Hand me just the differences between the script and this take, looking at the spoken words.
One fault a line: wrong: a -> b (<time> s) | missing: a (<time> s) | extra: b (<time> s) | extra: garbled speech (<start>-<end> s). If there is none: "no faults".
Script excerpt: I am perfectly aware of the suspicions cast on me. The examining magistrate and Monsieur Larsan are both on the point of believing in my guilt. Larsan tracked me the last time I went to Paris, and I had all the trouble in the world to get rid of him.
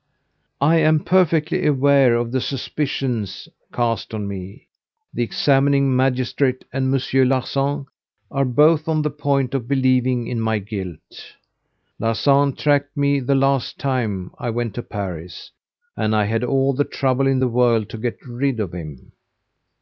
no faults